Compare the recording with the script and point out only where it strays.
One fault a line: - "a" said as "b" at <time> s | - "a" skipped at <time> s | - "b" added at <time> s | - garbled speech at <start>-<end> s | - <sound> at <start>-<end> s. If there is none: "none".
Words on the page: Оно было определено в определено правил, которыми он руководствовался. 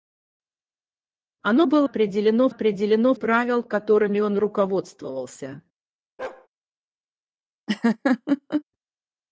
- bark at 6.2-6.5 s
- laugh at 7.7-8.6 s